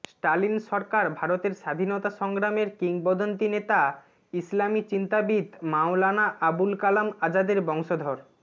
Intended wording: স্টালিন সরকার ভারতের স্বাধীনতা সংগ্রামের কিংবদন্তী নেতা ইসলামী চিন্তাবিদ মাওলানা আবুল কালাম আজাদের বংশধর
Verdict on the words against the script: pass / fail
pass